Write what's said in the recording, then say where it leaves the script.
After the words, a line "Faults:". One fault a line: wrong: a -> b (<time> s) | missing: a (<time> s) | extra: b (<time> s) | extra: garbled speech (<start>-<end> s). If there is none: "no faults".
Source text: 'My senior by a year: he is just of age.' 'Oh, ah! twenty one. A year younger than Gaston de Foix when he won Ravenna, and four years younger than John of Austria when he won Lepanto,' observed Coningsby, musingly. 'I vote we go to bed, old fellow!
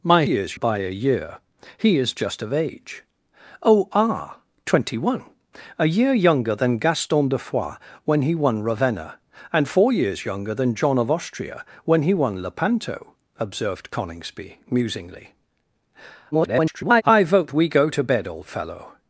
'My years by a year: he is just of age.' 'Oh, ah! twenty one. A year younger than Gaston de Foix when he won Ravenna, and four years younger than John of Austria when he won Lepanto,' observed Coningsby, musingly. [garbled] 'I vote we go to bed, old fellow!
Faults:
wrong: senior -> years (0.2 s)
extra: garbled speech (16.3-17.0 s)